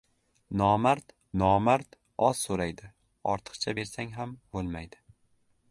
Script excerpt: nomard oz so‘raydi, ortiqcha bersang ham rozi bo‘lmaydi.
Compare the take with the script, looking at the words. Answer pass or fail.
fail